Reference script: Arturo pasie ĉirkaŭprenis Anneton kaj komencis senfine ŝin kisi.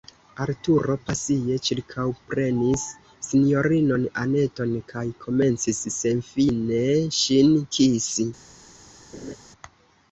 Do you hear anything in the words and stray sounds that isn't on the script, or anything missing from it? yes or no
yes